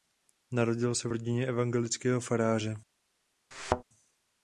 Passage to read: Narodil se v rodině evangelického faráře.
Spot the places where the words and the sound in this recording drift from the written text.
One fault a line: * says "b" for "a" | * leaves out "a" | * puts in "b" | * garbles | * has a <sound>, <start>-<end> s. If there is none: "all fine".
* has a thud, 3.5-3.8 s